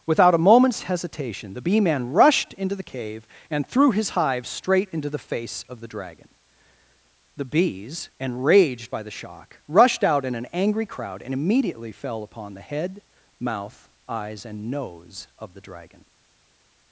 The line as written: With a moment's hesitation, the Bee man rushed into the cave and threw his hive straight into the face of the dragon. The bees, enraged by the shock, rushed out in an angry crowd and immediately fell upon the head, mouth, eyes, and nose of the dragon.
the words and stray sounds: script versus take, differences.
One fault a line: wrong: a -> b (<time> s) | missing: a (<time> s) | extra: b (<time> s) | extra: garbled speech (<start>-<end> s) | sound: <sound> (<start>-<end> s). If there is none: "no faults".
wrong: With -> Without (0.1 s)